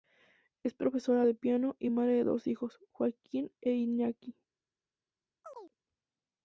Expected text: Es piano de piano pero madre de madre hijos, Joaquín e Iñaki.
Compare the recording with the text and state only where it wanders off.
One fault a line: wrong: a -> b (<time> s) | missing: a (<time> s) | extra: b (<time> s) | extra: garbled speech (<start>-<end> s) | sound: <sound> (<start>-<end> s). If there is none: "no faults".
wrong: piano -> profesora (0.7 s)
wrong: pero -> y (1.8 s)
wrong: madre -> dos (2.2 s)
sound: chirp (5.4-5.7 s)